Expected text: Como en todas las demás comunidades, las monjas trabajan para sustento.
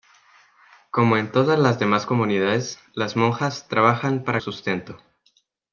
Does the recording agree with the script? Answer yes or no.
yes